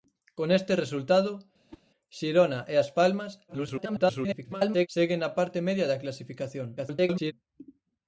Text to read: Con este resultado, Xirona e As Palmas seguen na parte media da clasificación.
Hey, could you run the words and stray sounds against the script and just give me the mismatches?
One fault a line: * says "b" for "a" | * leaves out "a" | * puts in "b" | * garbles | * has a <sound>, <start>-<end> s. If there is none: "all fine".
* has a whoosh, 1.7-1.8 s
* garbles
* garbles